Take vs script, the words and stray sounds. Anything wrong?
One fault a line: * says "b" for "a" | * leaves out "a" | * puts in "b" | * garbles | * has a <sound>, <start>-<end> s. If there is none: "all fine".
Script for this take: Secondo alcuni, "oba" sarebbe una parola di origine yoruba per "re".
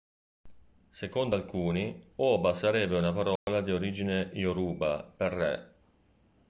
* has a dropout, 3.4-3.5 s